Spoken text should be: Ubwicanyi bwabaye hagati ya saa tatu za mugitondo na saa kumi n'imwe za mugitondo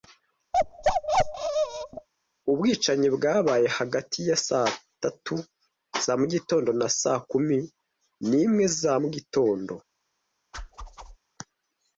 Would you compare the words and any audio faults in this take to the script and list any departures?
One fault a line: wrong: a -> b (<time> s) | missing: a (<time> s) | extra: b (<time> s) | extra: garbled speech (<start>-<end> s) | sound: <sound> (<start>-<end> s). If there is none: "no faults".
sound: bark (0.5-2.1 s)
sound: whoosh (10.5-11.2 s)